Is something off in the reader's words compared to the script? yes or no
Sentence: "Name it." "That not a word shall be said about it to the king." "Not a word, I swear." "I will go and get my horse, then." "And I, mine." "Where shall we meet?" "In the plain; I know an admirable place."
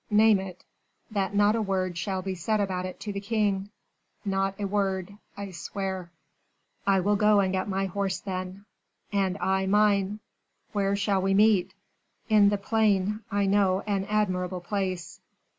no